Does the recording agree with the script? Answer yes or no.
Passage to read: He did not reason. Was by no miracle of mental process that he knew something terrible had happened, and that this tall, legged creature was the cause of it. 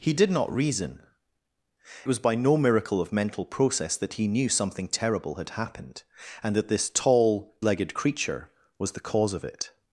yes